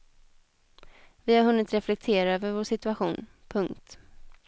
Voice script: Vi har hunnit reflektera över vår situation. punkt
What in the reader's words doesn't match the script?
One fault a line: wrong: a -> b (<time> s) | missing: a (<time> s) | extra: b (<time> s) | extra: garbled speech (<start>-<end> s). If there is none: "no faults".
no faults